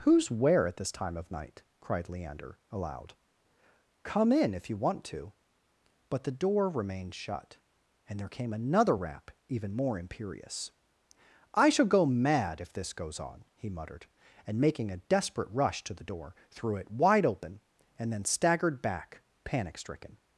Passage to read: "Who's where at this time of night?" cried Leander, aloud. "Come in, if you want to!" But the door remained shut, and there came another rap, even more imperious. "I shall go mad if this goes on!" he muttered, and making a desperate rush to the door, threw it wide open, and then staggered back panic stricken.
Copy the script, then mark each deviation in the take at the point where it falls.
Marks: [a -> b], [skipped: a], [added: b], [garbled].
"Who's where at this time of night?" cried Leander, aloud. "Come in, if you want to!" But the door remained shut, and there came another rap, even more imperious. "I shall go mad if this goes on!" he muttered, and making a desperate rush to the door, threw it wide open, and then staggered back panic stricken.